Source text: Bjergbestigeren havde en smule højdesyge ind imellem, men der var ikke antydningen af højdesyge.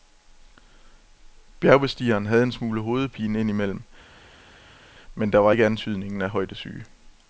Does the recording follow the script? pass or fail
fail